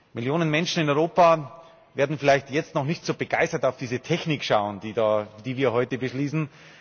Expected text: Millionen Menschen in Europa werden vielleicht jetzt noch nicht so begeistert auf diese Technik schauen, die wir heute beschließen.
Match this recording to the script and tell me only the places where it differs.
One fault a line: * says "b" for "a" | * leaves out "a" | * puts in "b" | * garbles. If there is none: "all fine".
all fine